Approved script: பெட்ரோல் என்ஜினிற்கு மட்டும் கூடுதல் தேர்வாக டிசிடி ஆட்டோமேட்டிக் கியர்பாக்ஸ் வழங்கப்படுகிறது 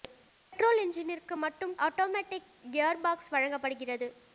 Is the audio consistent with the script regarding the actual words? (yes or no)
no